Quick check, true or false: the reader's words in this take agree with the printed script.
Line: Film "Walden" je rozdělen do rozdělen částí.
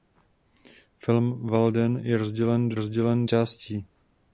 true